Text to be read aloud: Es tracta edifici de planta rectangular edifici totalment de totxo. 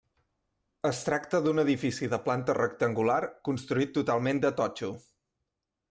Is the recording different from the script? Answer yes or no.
yes